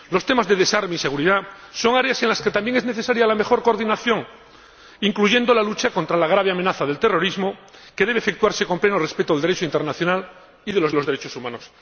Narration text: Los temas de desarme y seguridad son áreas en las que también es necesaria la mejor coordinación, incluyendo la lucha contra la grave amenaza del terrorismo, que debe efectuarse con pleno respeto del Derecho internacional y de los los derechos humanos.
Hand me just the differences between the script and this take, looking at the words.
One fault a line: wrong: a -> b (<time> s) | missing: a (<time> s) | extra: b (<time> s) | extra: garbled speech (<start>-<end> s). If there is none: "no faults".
no faults